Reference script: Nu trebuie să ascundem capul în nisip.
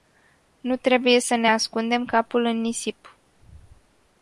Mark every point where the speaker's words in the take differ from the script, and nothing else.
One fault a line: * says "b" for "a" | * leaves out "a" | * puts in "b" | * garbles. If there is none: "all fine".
* puts in "ne"